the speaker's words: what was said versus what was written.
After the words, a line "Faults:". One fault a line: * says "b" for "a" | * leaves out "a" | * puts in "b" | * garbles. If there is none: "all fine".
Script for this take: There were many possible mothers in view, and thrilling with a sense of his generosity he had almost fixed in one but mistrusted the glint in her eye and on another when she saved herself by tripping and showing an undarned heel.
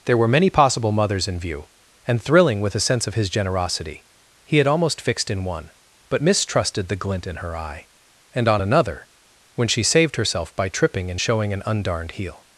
There were many possible mothers in view, and thrilling with a sense of his generosity he had almost fixed in one but mistrusted the glint in her eye and on another when she saved herself by tripping and showing an undarned heel.
Faults:
all fine